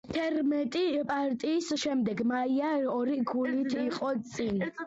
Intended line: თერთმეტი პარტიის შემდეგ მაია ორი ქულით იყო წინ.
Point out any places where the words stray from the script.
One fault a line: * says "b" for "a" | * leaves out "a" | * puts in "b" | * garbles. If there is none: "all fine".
all fine